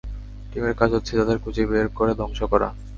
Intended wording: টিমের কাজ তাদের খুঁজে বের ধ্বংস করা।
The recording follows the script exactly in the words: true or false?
false